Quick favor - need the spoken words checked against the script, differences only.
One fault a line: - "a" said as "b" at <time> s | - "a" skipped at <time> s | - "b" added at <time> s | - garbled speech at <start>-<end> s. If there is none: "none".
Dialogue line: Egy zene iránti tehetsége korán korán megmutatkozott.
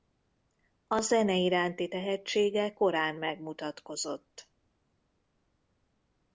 - "Egy" said as "A" at 0.9 s
- "korán" skipped at 3.2 s